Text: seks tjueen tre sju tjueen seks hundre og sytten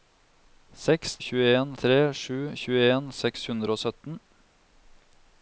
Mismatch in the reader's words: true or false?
false